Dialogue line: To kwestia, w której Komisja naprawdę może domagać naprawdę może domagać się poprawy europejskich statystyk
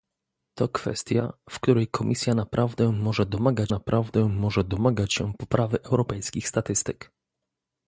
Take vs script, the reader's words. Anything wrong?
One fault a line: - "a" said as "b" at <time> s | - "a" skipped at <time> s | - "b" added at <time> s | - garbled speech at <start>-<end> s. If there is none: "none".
none